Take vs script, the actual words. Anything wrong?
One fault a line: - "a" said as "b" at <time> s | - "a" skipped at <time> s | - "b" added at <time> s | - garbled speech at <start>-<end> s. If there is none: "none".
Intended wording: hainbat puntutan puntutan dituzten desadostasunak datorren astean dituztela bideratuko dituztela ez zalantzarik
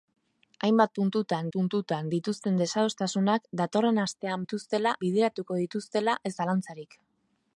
none